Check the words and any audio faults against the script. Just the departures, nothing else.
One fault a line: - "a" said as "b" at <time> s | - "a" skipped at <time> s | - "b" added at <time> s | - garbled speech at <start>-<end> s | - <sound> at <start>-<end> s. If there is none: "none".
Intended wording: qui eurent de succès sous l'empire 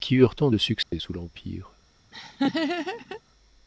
- "tant" added at 0.3 s
- dropout at 0.8-0.9 s
- laugh at 2.1-3.2 s